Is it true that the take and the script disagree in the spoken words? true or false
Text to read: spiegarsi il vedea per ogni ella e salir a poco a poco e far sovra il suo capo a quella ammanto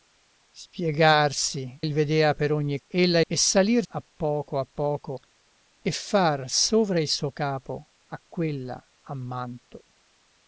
false